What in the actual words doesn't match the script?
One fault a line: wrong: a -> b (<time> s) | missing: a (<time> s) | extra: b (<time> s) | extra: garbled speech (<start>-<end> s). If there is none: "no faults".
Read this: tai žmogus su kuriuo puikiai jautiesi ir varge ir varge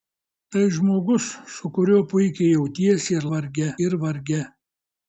no faults